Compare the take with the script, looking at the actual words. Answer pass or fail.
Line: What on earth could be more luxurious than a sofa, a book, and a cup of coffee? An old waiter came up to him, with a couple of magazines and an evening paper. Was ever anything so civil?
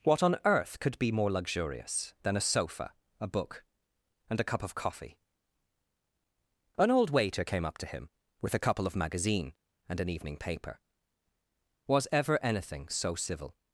fail